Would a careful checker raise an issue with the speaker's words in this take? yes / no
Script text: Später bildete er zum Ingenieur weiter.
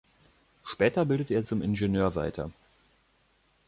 no